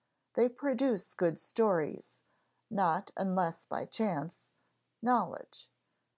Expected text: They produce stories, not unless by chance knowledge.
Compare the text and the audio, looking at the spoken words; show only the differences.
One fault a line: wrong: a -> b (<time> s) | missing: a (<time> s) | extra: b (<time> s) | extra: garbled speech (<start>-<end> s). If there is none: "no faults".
extra: good (1.1 s)